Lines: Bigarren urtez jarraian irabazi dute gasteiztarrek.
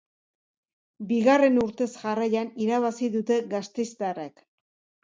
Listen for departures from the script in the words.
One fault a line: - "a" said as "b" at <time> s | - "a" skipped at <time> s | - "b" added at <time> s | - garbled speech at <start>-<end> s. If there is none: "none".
none